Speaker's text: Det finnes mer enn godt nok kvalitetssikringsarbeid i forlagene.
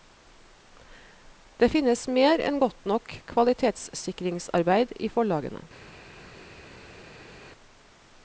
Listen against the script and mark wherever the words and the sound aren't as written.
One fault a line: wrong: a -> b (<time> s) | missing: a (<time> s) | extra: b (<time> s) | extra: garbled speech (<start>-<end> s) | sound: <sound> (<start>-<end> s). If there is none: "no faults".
no faults